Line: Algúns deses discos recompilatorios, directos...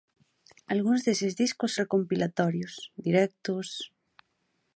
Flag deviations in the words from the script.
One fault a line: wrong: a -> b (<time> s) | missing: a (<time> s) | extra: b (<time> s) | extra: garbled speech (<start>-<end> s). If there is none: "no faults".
no faults